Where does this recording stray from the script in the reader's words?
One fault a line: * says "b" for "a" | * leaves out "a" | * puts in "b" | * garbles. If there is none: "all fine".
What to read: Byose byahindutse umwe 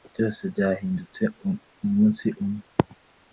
* puts in "umunsi"